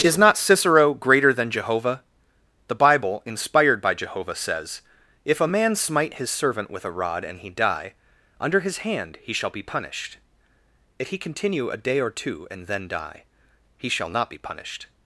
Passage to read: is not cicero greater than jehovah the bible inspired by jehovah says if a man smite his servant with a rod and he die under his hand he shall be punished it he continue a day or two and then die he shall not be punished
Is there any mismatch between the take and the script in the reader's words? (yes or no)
yes